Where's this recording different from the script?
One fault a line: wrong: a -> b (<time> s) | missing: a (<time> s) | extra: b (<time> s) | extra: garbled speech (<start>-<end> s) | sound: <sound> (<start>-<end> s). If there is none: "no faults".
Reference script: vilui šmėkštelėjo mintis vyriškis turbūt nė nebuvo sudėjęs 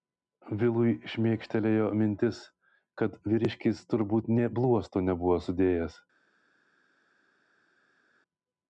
extra: kad (3.0 s)
extra: bluosto (4.6 s)